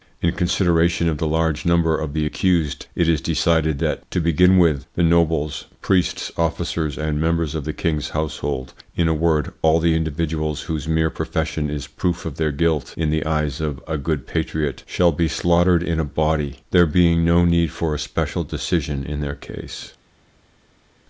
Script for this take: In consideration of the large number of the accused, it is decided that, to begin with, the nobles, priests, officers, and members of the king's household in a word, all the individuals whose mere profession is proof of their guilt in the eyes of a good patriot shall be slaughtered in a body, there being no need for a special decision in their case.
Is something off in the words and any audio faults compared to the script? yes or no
no